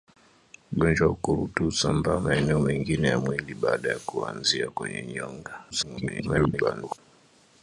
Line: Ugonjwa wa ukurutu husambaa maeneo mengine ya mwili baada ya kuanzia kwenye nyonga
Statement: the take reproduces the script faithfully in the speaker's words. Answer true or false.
false